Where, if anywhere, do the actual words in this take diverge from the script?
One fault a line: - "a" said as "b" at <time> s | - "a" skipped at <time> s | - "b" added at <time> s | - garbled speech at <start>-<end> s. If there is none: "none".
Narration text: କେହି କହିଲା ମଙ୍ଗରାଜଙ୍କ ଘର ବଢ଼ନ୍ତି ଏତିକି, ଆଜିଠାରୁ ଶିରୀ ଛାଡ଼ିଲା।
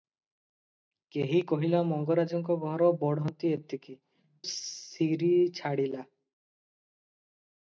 - "ଆଜିଠାରୁ" skipped at 4.0 s